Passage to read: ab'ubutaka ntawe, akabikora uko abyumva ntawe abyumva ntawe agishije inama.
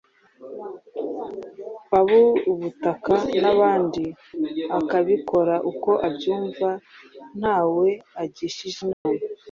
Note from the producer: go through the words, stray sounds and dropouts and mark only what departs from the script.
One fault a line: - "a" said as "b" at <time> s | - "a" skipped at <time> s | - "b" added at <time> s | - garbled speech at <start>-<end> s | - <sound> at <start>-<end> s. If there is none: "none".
- "ntawe" said as "n'abandi" at 3.4 s
- "abyumva ntawe" skipped at 7.9 s
- dropout at 8.9-9.1 s